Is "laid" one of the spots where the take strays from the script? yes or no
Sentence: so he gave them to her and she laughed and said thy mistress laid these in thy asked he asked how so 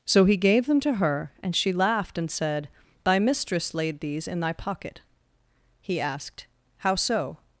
no